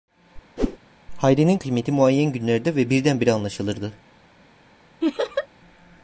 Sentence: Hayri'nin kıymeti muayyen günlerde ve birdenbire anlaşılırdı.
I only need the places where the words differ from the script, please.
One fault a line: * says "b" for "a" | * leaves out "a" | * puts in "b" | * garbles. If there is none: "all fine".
all fine